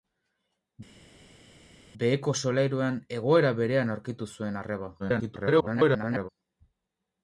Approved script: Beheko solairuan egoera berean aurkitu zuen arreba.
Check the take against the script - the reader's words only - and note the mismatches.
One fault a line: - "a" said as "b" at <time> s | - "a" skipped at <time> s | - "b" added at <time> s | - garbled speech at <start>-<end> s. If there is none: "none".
- garbled speech at 5.0-6.3 s